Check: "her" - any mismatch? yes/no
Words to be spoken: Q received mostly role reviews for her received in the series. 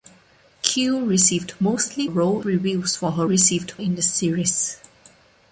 no